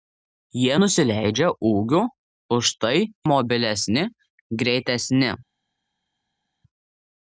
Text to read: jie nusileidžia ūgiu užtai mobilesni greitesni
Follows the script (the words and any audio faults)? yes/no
yes